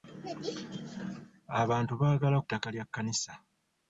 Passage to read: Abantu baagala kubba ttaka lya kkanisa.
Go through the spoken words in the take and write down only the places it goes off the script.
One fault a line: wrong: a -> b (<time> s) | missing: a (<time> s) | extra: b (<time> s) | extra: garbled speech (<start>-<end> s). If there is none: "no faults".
missing: kubba (2.4 s)